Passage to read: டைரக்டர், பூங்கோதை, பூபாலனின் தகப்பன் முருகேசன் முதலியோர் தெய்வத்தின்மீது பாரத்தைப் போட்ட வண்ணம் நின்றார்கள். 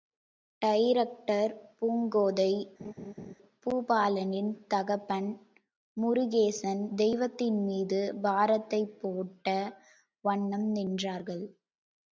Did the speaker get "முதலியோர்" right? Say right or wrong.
wrong